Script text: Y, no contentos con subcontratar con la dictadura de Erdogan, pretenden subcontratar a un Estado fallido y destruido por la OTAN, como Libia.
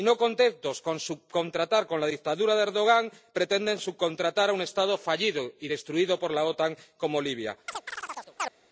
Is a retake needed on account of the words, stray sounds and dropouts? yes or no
yes